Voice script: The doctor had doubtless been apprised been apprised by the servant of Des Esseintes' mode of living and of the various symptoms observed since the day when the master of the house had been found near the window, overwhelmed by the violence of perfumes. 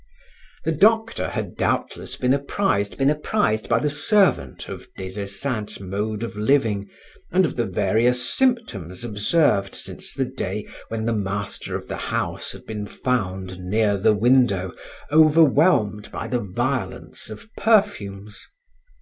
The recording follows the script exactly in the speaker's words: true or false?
true